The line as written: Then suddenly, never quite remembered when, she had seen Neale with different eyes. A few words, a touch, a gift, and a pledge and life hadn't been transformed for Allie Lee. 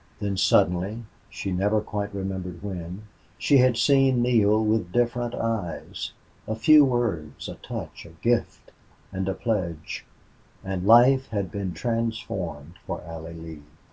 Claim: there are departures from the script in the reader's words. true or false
true